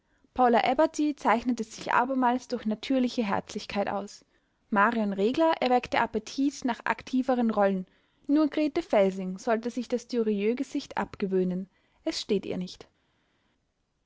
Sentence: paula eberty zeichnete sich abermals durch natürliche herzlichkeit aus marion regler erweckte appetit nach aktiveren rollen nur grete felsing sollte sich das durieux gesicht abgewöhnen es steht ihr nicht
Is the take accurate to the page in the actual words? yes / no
yes